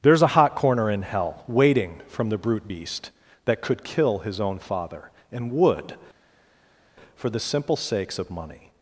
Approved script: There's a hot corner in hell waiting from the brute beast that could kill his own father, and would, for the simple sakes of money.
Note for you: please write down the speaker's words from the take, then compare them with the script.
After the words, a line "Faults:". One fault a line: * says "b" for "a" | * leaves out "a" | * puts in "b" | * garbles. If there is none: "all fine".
There's a hot corner in hell waiting from the brute beast that could kill his own father, and would, for the simple sakes of money.
Faults:
all fine